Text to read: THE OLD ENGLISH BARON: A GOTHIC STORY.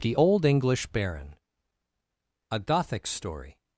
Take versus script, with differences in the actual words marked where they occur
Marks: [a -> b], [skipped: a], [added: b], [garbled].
THE OLD ENGLISH BARON: A GOTHIC STORY.